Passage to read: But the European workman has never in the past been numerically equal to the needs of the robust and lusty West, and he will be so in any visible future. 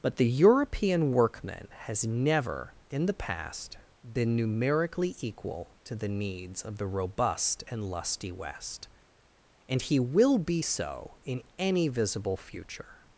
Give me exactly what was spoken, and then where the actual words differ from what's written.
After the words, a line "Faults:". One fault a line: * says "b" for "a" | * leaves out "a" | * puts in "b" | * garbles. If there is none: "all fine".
But the European workman has never in the past been numerically equal to the needs of the robust and lusty West, and he will be so in any visible future.
Faults:
all fine